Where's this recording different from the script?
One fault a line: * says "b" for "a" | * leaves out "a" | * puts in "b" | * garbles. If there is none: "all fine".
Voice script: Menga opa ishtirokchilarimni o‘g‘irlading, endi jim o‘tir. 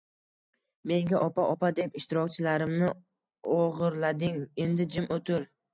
* puts in "opa deb"